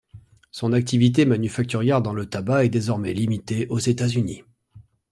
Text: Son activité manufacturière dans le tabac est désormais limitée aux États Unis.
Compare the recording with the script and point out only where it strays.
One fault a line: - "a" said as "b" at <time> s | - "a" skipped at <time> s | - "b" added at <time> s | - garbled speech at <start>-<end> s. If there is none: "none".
none